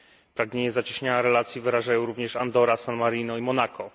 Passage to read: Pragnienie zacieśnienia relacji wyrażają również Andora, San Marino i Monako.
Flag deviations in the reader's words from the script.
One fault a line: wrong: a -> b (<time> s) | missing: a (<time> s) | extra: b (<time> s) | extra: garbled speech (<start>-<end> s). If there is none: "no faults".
no faults